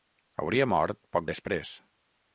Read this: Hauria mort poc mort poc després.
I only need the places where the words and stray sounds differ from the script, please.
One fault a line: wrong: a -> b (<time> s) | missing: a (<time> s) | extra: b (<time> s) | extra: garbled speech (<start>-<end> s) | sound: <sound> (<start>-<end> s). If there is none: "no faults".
missing: mort poc (1.3 s)